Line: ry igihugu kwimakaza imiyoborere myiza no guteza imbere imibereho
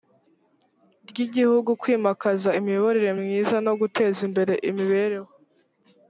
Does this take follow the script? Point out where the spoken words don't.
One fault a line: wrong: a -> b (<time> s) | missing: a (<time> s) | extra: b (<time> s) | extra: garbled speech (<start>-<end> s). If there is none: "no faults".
no faults